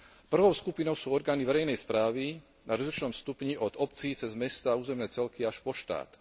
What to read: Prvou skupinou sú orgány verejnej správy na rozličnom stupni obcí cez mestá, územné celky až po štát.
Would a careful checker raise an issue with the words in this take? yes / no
yes